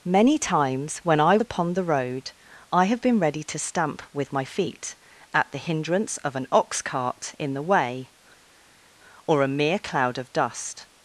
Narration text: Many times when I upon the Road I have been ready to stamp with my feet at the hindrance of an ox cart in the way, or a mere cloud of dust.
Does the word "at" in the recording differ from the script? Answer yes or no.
no